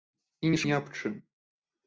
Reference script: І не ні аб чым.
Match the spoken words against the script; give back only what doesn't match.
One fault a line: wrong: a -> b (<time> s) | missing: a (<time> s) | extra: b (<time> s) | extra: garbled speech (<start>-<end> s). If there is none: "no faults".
no faults